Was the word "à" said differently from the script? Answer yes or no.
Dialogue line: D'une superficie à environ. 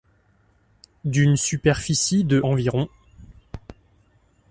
yes